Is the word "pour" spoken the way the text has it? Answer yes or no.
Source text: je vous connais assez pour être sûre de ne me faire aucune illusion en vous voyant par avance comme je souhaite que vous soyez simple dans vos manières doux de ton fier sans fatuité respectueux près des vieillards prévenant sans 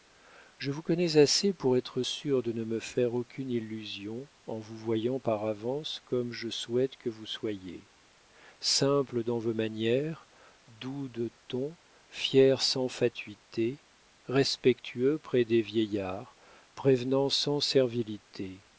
yes